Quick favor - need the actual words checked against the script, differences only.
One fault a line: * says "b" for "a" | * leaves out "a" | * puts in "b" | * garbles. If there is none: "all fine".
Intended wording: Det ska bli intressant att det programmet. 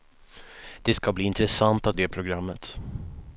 all fine